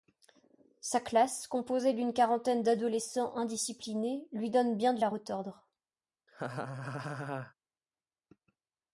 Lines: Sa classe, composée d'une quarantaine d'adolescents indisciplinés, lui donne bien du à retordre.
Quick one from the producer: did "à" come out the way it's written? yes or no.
yes